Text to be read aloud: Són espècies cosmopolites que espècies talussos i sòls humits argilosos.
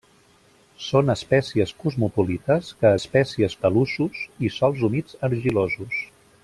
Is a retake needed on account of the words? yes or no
no